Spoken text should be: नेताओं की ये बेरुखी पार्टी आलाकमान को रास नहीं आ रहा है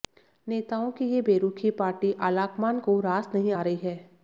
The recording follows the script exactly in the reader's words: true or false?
false